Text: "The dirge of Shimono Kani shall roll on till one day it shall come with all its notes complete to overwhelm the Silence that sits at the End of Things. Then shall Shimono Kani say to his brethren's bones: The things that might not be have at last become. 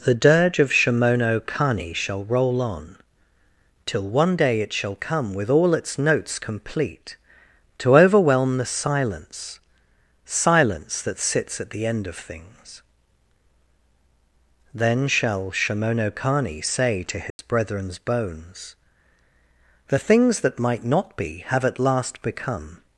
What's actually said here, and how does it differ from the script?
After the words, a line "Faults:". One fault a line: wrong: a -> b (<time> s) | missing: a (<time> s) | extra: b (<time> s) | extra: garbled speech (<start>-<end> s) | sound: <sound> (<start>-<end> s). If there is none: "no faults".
"The dirge of Shimono Kani shall roll on till one day it shall come with all its notes complete to overwhelm the Silence Silence that sits at the End of Things. Then shall Shimono Kani say to his brethren's bones: The things that might not be have at last become.
Faults:
extra: Silence (10.2 s)
sound: dropout (17.3-17.4 s)